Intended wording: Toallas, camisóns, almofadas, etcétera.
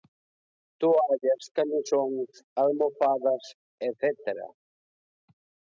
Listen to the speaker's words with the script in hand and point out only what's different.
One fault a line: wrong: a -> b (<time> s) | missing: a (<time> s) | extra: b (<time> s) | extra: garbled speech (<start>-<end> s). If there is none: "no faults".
no faults